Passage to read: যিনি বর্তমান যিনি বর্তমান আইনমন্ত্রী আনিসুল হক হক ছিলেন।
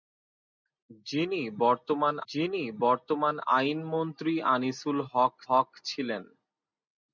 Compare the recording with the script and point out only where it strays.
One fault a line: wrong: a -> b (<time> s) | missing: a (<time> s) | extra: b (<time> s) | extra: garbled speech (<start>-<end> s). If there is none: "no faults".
no faults